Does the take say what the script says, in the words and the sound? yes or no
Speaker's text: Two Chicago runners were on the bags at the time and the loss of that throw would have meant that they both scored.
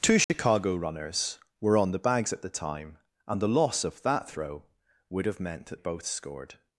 no